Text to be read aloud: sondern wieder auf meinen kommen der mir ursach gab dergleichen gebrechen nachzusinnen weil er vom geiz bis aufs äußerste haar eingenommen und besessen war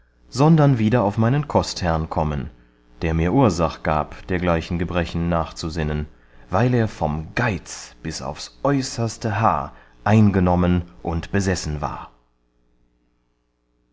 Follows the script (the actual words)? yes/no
no